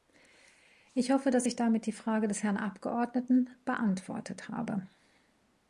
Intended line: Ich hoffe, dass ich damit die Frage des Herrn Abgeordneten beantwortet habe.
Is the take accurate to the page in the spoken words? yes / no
yes